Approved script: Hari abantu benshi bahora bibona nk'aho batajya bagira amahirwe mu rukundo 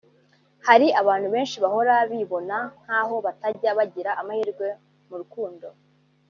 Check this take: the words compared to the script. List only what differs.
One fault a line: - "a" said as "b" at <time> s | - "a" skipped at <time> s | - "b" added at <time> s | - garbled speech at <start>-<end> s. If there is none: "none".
none